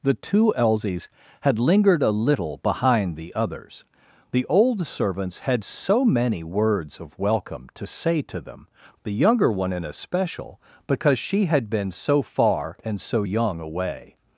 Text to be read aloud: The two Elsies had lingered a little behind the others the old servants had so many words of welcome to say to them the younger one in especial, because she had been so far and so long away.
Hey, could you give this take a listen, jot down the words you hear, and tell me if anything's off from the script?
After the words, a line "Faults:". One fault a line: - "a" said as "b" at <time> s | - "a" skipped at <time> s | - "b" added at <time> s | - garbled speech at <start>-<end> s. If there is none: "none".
The two Elsies had lingered a little behind the others the old servants had so many words of welcome to say to them the younger one in especial, because she had been so far and so young away.
Faults:
- "long" said as "young" at 13.2 s